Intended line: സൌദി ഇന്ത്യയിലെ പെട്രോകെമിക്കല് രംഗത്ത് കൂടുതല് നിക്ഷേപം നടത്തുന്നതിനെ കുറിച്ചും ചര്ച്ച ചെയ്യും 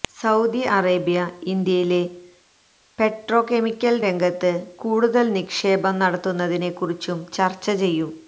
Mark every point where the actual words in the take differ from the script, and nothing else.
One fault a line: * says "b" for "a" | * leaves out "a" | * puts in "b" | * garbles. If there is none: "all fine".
* puts in "അറേബ്യ"